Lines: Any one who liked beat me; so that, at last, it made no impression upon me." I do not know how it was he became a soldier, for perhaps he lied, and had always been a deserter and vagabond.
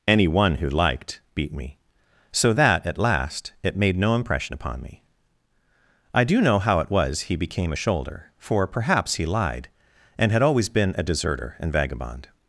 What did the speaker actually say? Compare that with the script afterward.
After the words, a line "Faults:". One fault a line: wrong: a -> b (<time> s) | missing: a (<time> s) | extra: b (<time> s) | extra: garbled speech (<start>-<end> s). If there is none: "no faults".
Any one who liked beat me; so that, at last, it made no impression upon me." I do know how it was he became a shoulder, for perhaps he lied, and had always been a deserter and vagabond.
Faults:
missing: not (6.4 s)
wrong: soldier -> shoulder (7.7 s)